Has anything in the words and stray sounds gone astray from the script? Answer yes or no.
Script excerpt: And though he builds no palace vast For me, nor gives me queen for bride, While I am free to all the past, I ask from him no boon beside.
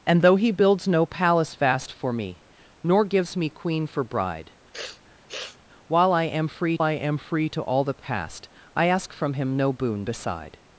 yes